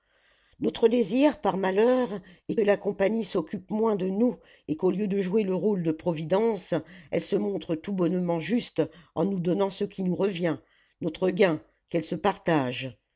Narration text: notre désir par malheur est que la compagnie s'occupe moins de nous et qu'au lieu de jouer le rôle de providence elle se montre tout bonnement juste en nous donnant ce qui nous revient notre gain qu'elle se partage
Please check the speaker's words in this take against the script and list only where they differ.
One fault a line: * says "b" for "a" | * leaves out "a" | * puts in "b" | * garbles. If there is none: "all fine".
* leaves out "que"